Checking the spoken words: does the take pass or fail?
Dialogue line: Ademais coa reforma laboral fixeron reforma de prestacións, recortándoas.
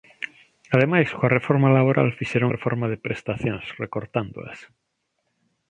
pass